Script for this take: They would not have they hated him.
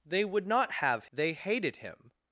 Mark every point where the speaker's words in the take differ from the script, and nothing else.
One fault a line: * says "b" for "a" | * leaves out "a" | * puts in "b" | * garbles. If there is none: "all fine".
all fine